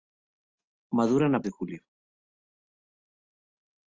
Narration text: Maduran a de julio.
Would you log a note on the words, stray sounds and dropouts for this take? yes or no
no